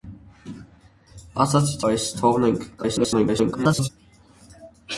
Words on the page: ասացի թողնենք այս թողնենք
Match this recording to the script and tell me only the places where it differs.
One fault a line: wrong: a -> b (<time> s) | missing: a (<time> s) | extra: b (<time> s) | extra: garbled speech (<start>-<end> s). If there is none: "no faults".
missing: թողնենք (1.8 s)
extra: garbled speech (2.8-3.9 s)